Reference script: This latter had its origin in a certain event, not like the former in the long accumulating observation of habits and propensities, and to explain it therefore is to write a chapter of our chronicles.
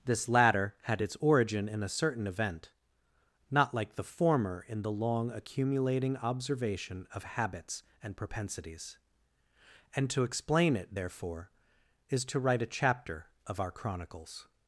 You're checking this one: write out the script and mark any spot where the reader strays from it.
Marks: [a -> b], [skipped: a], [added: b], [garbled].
This latter had its origin in a certain event, not like the former in the long accumulating observation of habits and propensities, and to explain it therefore is to write a chapter of our chronicles.